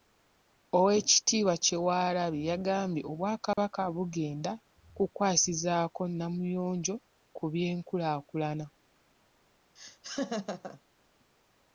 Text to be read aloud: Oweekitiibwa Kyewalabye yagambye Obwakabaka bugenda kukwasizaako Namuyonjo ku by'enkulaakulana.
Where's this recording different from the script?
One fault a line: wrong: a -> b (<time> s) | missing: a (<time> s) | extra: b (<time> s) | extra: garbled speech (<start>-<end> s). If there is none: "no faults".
no faults